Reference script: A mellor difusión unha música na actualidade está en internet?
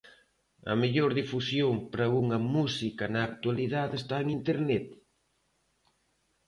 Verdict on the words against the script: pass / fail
fail